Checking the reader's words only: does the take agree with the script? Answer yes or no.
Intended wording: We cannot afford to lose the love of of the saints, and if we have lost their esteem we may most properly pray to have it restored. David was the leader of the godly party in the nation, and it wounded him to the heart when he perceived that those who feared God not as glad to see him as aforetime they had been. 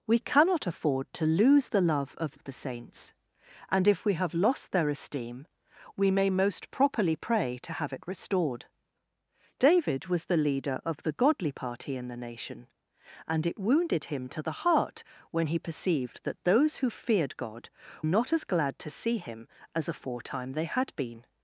yes